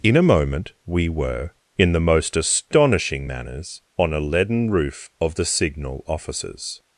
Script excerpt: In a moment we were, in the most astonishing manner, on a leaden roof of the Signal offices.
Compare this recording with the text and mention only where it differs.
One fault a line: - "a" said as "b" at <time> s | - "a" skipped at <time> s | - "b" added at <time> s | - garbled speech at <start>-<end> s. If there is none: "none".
- "manner" said as "manners" at 3.3 s